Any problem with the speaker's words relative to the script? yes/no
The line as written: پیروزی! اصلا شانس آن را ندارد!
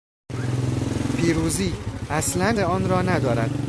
yes